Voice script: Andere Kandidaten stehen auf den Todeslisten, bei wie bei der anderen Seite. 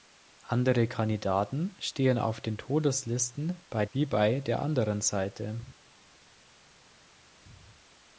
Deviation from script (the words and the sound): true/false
false